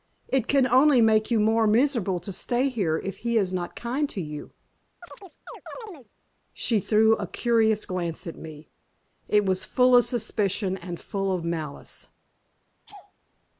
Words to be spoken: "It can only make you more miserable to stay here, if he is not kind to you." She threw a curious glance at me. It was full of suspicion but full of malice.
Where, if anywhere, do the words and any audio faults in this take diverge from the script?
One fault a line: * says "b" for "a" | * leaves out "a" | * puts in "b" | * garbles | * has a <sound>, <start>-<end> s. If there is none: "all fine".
* has a chirp, 5.0-6.1 s
* says "and" for "but"
* has a laugh, 12.9-13.1 s